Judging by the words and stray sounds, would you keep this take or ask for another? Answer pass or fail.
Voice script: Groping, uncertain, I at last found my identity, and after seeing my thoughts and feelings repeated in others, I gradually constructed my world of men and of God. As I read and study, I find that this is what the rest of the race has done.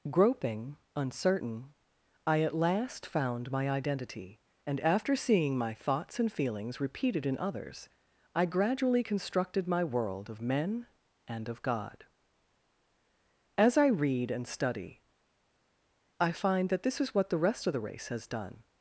pass